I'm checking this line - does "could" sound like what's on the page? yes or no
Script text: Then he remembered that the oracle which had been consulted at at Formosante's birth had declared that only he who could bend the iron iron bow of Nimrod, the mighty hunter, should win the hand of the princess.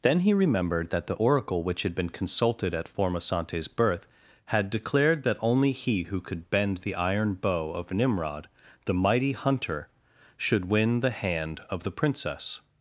yes